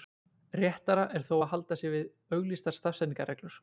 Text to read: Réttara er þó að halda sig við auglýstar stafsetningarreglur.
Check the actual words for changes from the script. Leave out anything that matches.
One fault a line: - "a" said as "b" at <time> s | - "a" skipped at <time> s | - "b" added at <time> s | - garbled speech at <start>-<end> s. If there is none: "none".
none